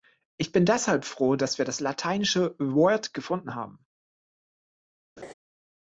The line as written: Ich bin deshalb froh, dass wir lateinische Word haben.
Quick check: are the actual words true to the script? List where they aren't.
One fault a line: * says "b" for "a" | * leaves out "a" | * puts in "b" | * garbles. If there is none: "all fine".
* puts in "das"
* puts in "gefunden"